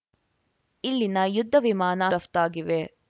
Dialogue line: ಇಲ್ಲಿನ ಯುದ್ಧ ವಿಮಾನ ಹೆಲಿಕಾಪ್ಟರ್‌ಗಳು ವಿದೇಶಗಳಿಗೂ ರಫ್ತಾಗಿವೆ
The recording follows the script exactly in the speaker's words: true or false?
false